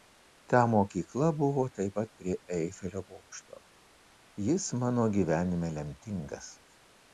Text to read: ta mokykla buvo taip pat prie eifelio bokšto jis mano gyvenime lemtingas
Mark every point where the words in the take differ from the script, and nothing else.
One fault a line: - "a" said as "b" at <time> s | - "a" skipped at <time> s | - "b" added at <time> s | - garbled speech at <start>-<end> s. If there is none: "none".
none